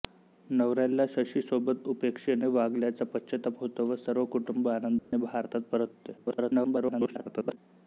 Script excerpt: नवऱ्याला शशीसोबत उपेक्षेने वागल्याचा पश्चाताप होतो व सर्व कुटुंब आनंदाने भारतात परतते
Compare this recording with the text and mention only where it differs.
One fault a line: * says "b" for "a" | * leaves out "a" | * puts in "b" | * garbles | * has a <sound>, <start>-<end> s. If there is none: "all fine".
* has a dropout, 5.0-5.1 s
* garbles